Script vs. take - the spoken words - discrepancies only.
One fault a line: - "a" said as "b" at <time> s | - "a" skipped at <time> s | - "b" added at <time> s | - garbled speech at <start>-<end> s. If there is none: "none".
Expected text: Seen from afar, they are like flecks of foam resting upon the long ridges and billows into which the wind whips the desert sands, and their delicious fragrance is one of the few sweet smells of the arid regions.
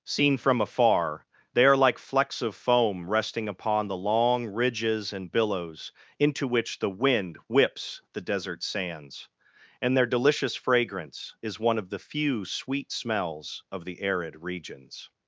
none